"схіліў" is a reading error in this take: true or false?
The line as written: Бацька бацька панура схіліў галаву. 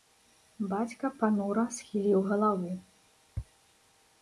false